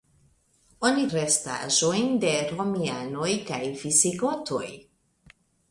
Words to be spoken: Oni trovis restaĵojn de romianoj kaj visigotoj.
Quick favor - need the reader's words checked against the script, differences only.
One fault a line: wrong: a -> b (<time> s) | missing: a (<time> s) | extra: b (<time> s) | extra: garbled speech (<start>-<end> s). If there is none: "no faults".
missing: trovis (1.0 s)